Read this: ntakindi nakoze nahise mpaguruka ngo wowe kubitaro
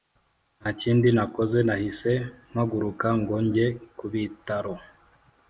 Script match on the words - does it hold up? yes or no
no